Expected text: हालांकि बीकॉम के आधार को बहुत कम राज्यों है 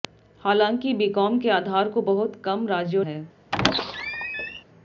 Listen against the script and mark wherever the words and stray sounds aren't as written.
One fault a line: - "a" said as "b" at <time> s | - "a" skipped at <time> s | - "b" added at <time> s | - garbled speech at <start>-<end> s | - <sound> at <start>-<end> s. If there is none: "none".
- squeak at 3.5-4.6 s